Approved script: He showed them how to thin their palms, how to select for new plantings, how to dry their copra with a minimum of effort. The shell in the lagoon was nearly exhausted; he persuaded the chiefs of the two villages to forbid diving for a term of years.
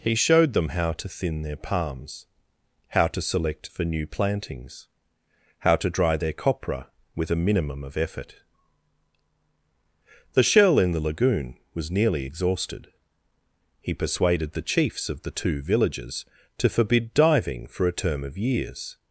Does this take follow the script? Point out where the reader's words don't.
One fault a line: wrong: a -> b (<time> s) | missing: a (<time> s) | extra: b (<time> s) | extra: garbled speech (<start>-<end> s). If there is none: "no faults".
no faults